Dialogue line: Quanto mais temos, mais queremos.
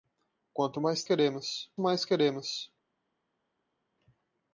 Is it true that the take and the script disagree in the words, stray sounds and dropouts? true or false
true